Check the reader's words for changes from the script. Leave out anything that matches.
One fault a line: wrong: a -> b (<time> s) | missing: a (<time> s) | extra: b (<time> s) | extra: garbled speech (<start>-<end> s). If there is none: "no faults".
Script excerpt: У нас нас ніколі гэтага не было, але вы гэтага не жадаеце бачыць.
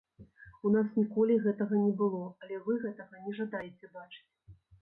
missing: нас (0.9 s)